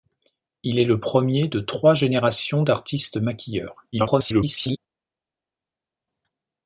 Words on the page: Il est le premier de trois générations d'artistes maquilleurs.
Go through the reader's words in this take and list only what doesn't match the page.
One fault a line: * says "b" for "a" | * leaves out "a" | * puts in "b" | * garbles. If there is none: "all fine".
* garbles